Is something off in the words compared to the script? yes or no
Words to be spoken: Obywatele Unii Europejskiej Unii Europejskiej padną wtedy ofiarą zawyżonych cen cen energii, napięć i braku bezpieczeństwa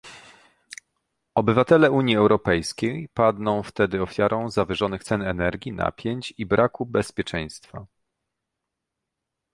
yes